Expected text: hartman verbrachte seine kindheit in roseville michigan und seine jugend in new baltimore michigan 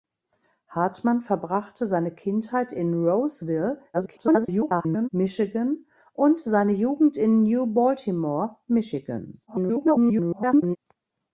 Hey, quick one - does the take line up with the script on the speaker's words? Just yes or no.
no